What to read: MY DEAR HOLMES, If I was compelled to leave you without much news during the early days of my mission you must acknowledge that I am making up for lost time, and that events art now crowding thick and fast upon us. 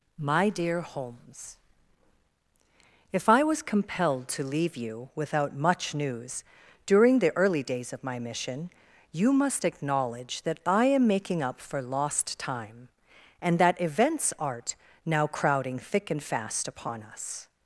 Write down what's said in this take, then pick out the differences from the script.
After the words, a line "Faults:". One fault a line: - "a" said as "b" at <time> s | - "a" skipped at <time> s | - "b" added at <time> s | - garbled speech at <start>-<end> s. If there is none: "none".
MY DEAR HOLMES, If I was compelled to leave you without much news during the early days of my mission you must acknowledge that I am making up for lost time, and that events art now crowding thick and fast upon us.
Faults:
none